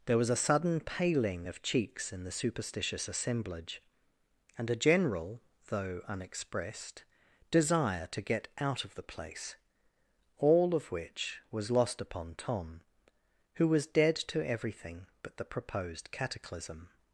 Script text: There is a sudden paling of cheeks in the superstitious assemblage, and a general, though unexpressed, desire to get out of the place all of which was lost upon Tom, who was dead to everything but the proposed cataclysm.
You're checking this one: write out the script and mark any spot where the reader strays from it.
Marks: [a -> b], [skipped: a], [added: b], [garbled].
There [is -> was] a sudden paling of cheeks in the superstitious assemblage, and a general, though unexpressed, desire to get out of the place all of which was lost upon Tom, who was dead to everything but the proposed cataclysm.